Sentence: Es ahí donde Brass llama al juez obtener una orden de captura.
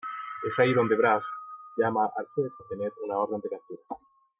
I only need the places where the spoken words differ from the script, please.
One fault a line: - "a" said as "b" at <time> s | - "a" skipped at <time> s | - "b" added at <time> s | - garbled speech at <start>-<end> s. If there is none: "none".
none